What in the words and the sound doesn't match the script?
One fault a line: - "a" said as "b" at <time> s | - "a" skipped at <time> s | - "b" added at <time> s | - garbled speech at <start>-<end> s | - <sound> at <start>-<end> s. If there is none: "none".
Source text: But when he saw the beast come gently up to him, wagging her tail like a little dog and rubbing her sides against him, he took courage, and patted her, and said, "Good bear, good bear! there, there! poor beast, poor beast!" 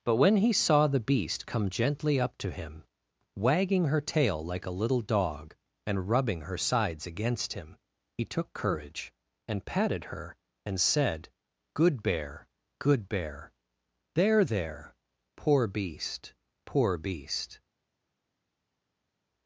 none